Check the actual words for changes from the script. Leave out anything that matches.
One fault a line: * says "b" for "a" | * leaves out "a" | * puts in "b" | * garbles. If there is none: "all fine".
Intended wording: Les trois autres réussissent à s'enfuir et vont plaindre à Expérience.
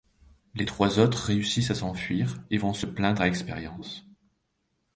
* puts in "se"